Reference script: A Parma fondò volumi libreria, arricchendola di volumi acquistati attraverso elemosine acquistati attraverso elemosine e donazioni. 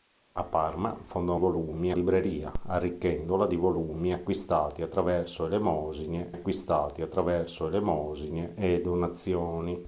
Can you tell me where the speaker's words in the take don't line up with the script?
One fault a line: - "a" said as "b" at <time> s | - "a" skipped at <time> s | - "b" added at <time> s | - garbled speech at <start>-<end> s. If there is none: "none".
none